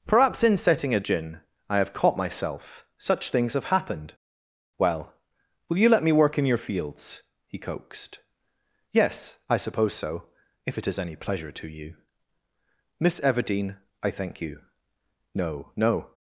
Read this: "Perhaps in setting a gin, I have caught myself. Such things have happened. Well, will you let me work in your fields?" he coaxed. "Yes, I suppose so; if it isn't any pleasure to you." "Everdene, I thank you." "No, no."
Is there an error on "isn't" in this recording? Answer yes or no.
yes